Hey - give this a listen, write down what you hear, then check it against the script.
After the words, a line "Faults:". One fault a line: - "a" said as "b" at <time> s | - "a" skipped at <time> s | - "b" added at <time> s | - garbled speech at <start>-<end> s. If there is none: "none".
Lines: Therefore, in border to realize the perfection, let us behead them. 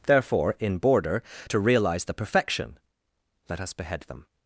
Therefore, in border to realize the perfection, let us behead them.
Faults:
none